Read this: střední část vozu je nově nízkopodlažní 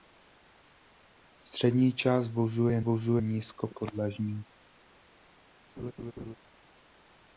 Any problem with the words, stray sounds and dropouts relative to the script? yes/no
yes